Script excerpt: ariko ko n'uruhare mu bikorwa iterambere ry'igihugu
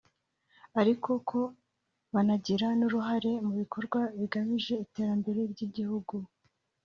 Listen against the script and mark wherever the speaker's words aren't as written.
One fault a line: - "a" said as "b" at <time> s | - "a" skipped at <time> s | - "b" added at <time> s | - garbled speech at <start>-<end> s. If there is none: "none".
- "banagira" added at 2.1 s
- "bigamije" added at 4.2 s